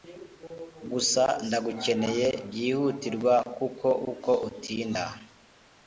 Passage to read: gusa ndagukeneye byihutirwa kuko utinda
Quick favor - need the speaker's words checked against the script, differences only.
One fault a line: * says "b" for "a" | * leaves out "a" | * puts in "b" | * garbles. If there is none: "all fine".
* puts in "uko"